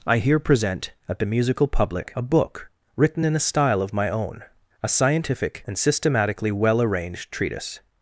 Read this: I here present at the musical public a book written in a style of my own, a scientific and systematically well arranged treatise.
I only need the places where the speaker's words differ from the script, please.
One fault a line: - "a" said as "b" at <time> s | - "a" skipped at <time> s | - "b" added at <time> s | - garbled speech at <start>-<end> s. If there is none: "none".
none